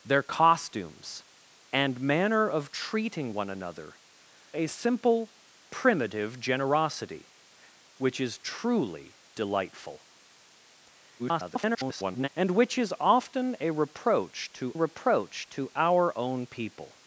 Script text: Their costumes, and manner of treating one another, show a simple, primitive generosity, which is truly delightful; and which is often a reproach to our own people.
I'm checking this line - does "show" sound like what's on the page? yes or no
no